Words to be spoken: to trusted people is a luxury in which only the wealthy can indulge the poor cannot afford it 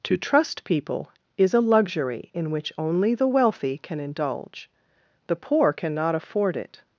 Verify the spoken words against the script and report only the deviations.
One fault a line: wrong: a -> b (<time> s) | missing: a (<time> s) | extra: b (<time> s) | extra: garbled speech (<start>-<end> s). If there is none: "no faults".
wrong: trusted -> trust (0.2 s)